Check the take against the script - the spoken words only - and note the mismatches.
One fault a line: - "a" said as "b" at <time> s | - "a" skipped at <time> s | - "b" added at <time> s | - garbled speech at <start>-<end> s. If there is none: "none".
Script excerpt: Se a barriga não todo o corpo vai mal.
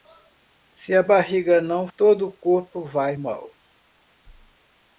none